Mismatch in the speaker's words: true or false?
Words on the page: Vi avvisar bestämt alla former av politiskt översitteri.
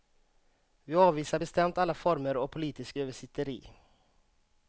false